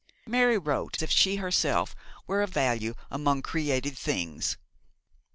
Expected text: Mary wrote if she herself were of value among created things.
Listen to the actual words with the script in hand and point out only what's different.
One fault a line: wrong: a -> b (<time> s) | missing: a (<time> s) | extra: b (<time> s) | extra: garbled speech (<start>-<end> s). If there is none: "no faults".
no faults